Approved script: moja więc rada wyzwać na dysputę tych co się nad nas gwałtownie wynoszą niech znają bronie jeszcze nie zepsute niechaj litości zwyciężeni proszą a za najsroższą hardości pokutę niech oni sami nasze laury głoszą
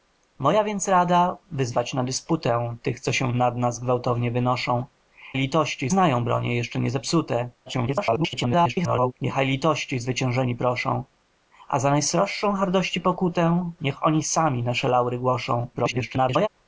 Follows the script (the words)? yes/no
no